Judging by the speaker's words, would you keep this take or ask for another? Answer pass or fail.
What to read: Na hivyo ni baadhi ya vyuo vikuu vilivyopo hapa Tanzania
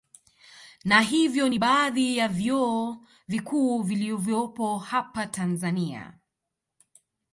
pass